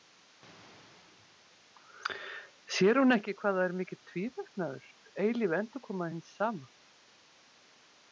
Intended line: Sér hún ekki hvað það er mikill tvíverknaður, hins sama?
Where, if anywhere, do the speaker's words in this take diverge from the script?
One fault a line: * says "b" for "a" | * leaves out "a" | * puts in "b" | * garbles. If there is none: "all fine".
* puts in "eilíf endurkoma"